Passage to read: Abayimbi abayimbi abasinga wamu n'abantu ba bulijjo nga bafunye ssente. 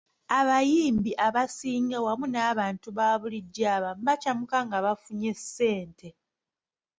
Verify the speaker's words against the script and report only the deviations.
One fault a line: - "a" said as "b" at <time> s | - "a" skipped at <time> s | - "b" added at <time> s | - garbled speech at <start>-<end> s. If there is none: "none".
- "abayimbi" skipped at 1.1 s
- "abamu bakyamuka" added at 3.8 s